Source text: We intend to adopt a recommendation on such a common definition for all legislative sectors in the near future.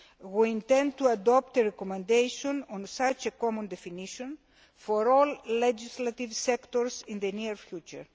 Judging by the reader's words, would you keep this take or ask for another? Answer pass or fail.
pass